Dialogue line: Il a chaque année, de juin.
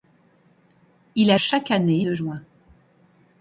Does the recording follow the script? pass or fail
pass